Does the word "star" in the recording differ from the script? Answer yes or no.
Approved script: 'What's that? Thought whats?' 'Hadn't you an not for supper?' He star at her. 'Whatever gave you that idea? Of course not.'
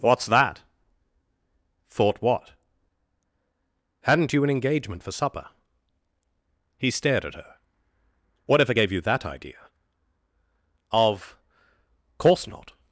yes